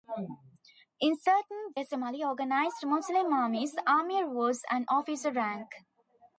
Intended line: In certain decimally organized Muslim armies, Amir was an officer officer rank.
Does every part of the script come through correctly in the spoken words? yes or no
no